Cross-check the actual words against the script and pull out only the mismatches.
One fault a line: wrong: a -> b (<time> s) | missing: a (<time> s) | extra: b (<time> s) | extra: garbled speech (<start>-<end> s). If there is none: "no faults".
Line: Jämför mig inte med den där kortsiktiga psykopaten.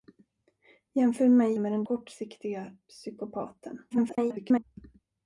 missing: inte (1.6 s)
missing: där (1.8 s)
extra: garbled speech (3.9-4.6 s)